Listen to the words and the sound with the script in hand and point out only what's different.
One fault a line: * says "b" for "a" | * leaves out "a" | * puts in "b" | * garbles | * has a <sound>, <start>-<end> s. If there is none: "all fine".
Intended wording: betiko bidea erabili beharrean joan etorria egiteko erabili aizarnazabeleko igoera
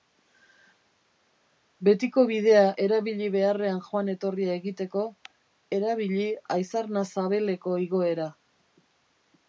all fine